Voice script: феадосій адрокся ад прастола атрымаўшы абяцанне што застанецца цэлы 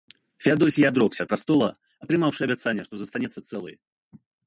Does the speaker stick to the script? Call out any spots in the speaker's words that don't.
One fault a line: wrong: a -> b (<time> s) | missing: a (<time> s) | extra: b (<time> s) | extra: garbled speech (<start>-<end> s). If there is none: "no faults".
no faults